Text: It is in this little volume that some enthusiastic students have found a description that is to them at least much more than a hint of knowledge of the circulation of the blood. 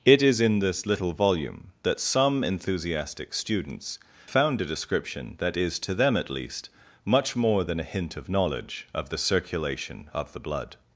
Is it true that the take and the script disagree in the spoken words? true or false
true